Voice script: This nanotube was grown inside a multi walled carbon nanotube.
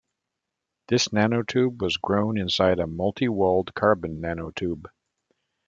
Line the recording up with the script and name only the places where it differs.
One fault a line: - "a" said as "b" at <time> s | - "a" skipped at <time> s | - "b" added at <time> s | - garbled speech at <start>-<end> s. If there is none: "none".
none